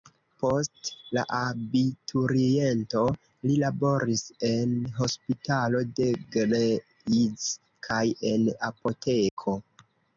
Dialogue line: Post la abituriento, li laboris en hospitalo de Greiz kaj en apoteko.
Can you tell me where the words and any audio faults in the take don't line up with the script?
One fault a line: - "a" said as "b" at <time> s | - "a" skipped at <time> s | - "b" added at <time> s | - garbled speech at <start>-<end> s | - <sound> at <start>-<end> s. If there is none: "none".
- dropout at 9.3-9.4 s